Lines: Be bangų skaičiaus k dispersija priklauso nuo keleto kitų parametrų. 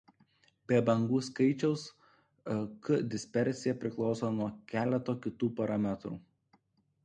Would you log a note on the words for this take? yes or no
no